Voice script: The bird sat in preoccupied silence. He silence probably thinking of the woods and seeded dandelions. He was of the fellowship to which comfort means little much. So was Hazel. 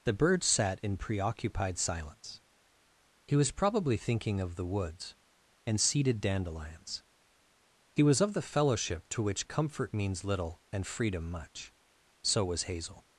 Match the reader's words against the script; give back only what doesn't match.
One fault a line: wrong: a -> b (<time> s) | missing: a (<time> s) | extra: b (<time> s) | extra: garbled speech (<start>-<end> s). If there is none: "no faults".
wrong: silence -> was (3.4 s)
extra: and freedom (10.7 s)